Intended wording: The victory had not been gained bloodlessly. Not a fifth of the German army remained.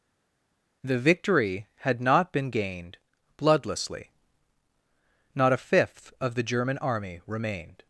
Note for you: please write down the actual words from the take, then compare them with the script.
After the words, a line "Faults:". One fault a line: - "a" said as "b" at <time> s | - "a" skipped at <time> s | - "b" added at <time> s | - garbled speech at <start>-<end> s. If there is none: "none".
The victory had not been gained bloodlessly. Not a fifth of the German army remained.
Faults:
none